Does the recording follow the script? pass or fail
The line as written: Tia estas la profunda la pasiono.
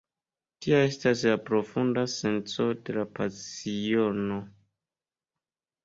fail